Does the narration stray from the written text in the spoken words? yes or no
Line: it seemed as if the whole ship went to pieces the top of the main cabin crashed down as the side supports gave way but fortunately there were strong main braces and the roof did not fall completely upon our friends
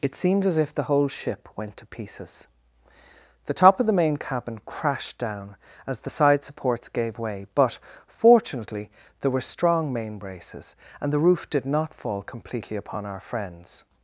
no